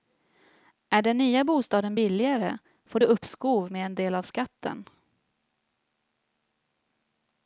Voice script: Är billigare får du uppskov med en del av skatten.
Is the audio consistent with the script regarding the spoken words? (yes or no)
no